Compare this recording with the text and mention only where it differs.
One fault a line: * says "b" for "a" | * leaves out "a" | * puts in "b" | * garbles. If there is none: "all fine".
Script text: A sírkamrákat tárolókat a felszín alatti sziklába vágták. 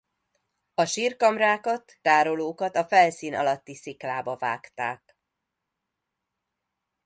all fine